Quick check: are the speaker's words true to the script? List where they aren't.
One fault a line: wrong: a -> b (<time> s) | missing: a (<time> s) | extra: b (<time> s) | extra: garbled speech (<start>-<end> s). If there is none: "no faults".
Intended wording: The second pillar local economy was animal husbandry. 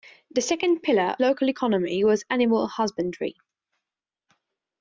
no faults